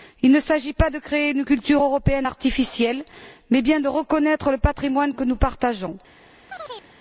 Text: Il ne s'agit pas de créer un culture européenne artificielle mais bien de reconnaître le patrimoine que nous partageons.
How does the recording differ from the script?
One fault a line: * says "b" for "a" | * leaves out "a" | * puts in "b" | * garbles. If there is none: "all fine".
* says "une" for "un"